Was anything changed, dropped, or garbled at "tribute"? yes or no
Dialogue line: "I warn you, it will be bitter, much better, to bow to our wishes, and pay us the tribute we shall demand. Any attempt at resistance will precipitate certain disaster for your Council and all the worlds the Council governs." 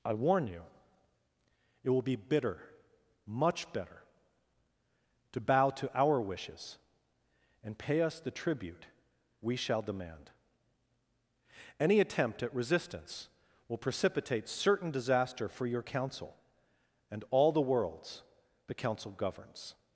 no